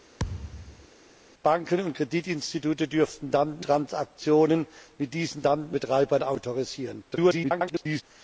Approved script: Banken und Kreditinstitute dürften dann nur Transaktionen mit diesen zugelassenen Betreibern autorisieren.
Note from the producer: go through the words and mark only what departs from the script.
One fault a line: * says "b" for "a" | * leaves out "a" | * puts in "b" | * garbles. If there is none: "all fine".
* leaves out "nur"
* says "dann" for "zugelassenen"
* garbles